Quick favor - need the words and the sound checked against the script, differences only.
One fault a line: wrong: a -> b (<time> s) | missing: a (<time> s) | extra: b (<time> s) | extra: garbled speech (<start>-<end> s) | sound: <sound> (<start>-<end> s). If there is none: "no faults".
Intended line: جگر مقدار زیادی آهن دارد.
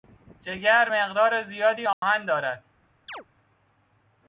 sound: dropout (1.9-2.0 s)
sound: chirp (3.1-3.2 s)